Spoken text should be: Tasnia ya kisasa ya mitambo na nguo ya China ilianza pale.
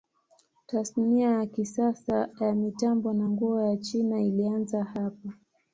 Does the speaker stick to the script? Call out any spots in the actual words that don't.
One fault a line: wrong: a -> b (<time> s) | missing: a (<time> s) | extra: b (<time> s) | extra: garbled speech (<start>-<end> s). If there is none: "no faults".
wrong: pale -> hapa (4.8 s)